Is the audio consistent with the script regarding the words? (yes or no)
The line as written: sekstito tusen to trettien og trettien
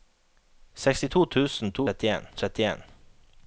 yes